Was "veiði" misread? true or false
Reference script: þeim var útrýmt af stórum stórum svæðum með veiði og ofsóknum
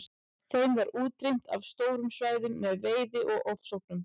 false